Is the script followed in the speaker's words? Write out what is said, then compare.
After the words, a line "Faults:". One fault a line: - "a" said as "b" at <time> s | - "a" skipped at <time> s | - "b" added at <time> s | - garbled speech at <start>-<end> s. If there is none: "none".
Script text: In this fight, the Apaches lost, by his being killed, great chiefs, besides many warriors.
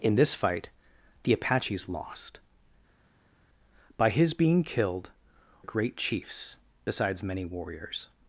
In this fight, the Apaches lost, by his being killed, great chiefs, besides many warriors.
Faults:
none